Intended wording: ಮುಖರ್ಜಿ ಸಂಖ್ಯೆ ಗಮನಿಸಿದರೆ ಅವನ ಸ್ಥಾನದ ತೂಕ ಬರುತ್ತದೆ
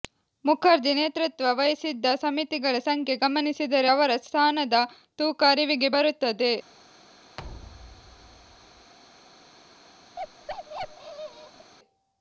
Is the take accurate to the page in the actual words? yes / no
no